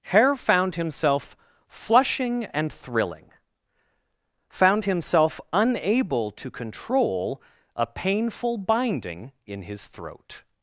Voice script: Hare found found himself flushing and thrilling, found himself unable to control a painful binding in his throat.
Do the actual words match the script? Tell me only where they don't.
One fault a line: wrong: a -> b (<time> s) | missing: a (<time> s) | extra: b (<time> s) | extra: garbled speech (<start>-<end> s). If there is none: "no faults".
missing: found (0.8 s)